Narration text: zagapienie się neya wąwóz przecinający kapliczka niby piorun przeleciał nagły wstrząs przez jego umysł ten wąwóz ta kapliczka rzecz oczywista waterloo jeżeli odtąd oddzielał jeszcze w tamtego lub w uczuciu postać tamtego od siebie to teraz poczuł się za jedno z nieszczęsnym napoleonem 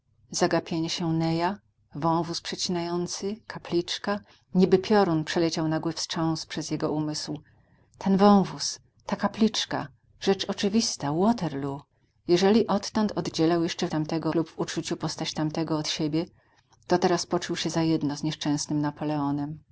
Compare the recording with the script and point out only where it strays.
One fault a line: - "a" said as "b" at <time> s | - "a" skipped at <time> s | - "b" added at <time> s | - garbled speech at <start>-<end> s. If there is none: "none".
none